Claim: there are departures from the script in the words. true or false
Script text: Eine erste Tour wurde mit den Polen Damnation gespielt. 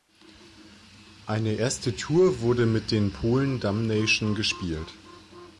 false